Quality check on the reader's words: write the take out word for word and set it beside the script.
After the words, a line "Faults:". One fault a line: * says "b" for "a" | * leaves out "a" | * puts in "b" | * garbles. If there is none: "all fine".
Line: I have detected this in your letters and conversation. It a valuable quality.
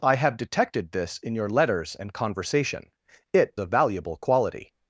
I have detected this in your letters and conversation. It a valuable quality.
Faults:
all fine